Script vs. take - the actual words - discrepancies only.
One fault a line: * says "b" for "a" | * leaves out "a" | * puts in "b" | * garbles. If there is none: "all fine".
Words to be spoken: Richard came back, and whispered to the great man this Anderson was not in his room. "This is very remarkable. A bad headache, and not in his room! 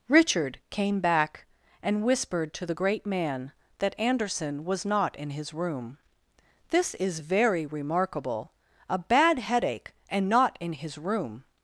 * says "that" for "this"